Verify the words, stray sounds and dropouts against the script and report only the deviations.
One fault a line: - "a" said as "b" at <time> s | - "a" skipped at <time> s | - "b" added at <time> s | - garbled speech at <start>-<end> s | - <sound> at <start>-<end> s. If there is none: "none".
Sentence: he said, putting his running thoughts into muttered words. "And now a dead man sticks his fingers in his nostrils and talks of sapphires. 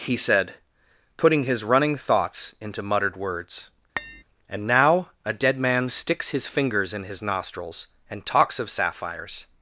- tap at 4.0-4.2 s